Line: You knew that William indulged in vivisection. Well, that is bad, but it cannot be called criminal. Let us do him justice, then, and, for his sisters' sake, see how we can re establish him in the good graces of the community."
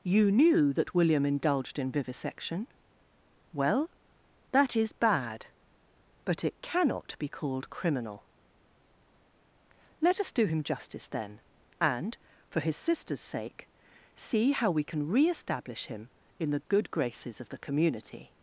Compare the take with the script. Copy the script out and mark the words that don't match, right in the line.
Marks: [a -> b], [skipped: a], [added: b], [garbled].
You knew that William indulged in vivisection. Well, that is bad, but it cannot be called criminal. Let us do him justice, then, and, for his sisters' sake, see how we can re establish him in the good graces of the community."